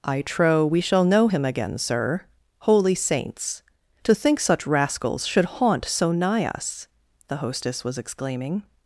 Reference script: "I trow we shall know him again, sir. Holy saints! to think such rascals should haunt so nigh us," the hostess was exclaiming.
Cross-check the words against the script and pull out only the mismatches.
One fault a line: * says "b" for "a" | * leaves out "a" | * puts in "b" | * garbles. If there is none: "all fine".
all fine